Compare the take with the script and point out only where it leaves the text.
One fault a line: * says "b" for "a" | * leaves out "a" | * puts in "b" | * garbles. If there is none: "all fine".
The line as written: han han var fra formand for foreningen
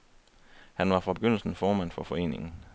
* leaves out "han"
* puts in "begyndelsen"